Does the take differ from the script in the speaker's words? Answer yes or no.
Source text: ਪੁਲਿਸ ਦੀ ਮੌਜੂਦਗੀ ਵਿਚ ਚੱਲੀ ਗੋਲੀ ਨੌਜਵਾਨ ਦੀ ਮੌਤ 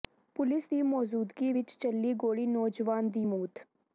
no